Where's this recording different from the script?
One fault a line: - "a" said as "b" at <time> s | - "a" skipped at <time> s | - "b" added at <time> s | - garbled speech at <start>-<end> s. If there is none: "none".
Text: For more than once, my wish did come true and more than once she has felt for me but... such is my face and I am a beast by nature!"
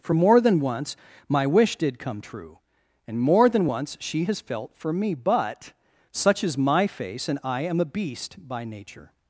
none